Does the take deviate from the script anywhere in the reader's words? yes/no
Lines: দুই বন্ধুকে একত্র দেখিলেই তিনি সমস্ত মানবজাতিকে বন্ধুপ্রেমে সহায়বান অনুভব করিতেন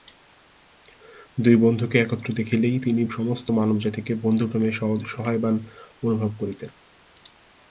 no